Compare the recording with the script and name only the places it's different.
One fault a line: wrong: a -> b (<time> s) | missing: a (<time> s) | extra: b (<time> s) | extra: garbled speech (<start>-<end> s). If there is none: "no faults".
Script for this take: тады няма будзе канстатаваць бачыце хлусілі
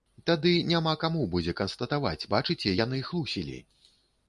extra: каму (1.0 s)
extra: яны (2.8 s)